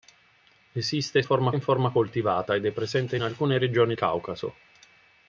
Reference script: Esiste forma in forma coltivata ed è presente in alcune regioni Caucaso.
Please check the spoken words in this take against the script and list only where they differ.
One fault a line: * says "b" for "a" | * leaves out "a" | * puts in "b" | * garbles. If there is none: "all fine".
all fine